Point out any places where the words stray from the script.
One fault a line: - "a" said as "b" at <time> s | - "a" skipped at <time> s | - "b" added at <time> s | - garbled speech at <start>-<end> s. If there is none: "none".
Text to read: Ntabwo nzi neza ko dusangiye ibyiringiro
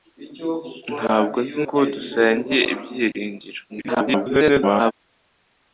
- "neza" skipped at 1.6 s
- garbled speech at 3.7-4.9 s